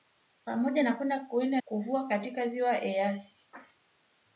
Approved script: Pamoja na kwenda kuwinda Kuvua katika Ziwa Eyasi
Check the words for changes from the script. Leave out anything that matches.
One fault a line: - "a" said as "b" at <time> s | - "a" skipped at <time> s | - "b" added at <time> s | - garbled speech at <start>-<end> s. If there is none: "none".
none